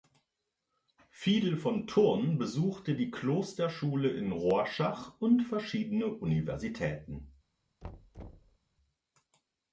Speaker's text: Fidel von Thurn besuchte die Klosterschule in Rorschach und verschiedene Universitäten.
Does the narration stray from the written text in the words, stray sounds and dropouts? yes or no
yes